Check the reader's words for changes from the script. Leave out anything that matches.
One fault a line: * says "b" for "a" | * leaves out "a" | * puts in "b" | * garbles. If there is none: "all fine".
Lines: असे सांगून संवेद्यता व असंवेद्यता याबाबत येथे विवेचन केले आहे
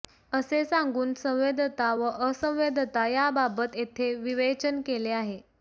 all fine